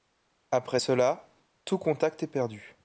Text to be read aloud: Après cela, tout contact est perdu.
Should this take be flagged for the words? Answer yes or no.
no